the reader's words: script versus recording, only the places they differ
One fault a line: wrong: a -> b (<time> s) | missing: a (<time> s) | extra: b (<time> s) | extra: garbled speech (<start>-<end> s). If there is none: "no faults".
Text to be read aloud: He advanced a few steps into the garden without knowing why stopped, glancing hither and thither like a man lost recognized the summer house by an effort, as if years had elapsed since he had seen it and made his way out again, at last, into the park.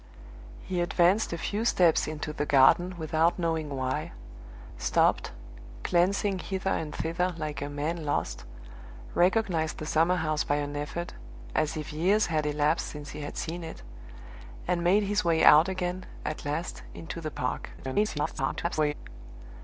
extra: garbled speech (17.8-18.9 s)